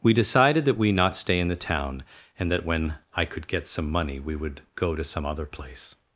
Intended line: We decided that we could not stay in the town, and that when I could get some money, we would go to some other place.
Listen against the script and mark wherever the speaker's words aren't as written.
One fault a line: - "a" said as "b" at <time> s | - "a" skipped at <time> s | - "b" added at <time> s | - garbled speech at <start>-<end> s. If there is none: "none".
- "could" skipped at 0.9 s